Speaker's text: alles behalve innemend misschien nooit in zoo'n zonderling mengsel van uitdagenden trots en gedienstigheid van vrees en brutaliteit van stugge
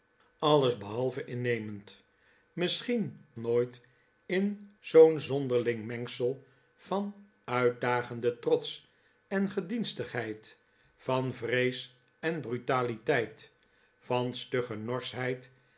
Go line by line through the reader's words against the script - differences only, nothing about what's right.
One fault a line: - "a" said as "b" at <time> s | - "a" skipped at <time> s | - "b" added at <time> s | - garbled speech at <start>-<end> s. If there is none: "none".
none